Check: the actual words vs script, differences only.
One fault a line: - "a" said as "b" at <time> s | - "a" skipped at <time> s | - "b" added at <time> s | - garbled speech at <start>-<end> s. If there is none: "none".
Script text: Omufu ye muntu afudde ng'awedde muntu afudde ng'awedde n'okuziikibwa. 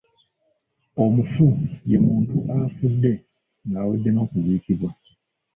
- "muntu afudde ng'awedde" skipped at 4.1 s